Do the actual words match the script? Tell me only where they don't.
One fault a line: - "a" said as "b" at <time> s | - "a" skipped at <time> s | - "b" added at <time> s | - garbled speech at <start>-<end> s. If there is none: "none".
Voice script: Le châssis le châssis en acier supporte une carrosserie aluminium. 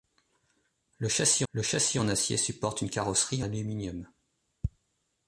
none